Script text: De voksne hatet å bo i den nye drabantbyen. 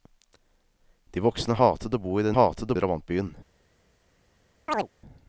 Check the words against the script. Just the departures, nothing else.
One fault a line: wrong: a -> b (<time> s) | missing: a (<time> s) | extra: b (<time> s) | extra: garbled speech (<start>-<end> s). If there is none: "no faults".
wrong: nye -> hatet (2.3 s)